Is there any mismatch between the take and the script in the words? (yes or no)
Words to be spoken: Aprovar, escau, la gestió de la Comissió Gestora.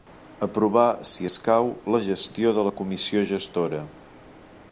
yes